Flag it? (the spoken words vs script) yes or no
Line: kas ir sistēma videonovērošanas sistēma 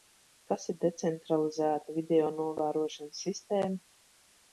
yes